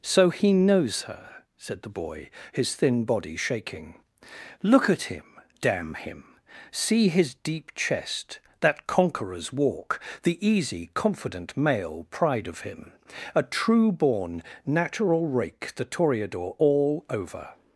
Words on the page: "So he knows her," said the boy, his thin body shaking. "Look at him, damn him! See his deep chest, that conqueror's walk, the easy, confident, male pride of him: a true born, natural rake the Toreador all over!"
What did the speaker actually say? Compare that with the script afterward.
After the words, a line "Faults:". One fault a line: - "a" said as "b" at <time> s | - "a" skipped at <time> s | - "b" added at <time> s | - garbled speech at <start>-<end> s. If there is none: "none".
"So he knows her," said the boy, his thin body shaking. "Look at him, damn him! See his deep chest, that conqueror's walk, the easy, confident, male pride of him: a true born, natural rake the Toreador all over!"
Faults:
none